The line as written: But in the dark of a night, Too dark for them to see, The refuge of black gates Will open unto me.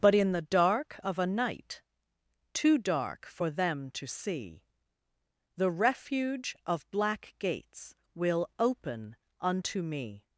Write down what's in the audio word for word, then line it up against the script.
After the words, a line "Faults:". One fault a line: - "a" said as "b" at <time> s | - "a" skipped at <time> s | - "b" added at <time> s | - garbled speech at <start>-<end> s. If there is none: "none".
But in the dark of a night, Too dark for them to see, The refuge of black gates Will open unto me.
Faults:
none